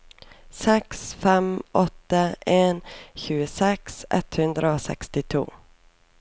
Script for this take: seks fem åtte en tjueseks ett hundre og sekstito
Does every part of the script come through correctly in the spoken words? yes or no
yes